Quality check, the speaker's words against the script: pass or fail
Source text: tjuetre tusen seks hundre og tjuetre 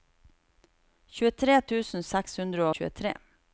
fail